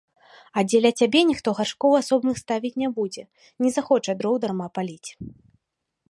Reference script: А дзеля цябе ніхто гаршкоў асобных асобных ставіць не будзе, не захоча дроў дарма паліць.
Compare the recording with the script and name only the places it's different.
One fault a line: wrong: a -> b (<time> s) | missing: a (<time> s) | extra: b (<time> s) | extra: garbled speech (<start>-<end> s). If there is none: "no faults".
missing: асобных (2.4 s)